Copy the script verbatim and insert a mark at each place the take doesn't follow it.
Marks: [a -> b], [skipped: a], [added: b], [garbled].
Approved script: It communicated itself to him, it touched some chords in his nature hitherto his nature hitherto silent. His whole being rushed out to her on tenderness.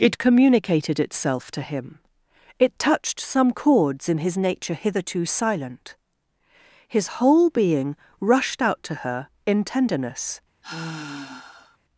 It communicated itself to him, it touched some chords in his nature hitherto [skipped: his nature hitherto] silent. His whole being rushed out to her [on -> in] tenderness.